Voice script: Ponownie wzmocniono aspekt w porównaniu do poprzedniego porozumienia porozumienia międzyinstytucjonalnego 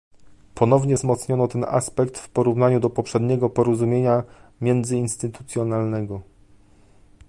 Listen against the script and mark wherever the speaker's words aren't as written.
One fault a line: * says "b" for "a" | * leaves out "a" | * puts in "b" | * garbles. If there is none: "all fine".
* puts in "ten"
* leaves out "porozumienia"